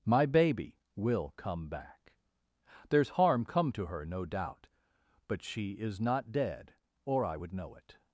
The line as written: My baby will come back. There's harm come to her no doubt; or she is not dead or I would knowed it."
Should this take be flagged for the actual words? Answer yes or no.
yes